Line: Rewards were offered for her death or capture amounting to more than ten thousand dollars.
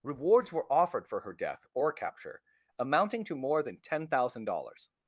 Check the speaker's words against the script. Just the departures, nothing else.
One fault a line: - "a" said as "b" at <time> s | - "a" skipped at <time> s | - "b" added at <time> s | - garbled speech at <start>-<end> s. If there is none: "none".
none